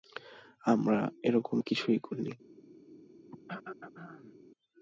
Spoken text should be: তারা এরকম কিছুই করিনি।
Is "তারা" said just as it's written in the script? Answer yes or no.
no